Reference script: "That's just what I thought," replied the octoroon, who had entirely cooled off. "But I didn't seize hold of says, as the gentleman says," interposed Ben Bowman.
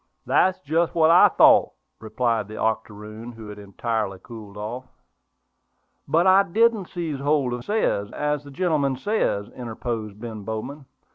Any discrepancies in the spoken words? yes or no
no